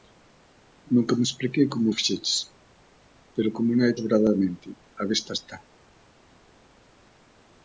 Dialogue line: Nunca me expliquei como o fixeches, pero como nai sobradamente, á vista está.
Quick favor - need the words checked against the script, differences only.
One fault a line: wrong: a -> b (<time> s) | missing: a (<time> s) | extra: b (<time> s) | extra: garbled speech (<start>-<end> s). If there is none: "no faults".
no faults